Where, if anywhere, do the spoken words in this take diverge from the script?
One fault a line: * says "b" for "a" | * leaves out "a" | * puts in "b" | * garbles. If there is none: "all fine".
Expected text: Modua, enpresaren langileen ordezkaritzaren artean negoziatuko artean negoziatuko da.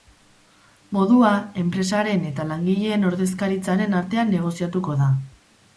* puts in "eta"
* leaves out "artean negoziatuko"